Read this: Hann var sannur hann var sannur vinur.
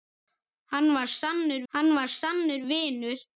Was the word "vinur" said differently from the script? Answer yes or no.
no